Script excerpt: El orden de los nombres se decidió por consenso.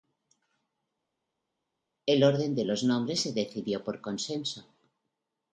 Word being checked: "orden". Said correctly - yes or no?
yes